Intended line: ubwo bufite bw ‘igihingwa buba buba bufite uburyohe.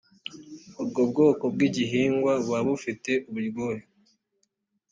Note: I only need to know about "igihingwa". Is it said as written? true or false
true